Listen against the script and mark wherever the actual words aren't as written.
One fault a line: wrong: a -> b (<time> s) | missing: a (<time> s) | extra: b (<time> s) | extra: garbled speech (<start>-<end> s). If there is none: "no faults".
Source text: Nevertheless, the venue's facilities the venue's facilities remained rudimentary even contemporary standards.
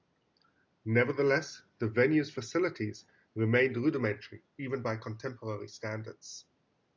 missing: the venue's facilities (3.0 s)
extra: by (4.8 s)